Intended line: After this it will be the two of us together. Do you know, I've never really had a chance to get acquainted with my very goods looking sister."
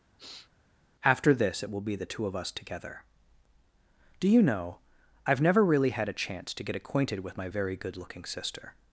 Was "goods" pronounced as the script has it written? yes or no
no